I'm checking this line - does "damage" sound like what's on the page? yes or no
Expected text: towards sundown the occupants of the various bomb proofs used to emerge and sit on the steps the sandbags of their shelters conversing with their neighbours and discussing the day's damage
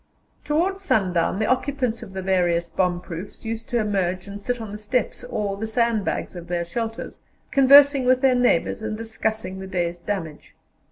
yes